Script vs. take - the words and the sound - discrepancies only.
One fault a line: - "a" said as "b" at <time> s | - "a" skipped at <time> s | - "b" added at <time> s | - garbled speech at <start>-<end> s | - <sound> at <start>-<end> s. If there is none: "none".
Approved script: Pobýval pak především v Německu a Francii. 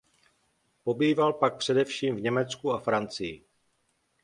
none